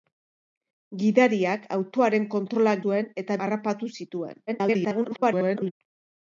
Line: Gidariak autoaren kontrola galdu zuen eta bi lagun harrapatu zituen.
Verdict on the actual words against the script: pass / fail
fail